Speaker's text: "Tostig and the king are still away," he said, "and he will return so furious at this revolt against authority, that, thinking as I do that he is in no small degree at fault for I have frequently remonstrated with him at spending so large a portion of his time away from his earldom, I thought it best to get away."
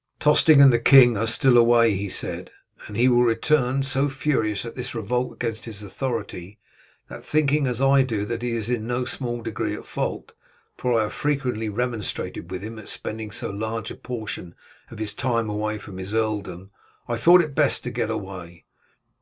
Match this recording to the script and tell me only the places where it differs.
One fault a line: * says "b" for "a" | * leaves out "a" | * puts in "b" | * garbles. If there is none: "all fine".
* puts in "his"